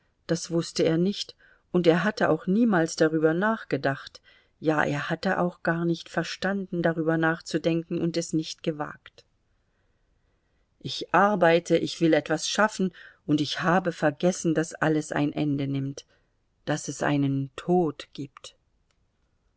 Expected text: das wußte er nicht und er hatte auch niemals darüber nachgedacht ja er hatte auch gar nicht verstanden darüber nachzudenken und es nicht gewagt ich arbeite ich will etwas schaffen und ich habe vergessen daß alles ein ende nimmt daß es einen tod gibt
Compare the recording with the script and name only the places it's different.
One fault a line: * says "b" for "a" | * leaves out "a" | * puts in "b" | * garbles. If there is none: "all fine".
all fine